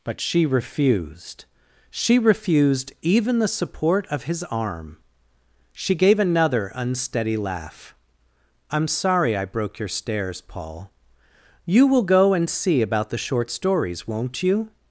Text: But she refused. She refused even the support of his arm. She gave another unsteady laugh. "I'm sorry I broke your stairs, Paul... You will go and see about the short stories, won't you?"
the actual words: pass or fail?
pass